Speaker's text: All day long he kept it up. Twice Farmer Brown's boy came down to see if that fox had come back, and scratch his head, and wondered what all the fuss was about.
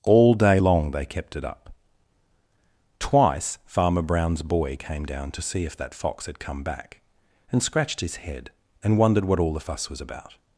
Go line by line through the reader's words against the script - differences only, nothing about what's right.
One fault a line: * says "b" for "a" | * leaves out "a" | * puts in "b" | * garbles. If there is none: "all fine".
* says "they" for "he"
* says "scratched" for "scratch"